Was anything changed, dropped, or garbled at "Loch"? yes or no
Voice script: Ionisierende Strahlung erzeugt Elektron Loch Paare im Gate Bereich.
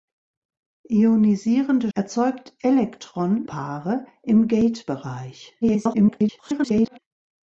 yes